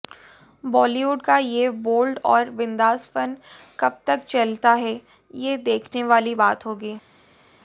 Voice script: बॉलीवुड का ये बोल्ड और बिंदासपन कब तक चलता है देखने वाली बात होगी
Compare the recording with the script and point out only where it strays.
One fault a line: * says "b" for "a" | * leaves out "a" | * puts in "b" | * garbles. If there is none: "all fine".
* puts in "ये"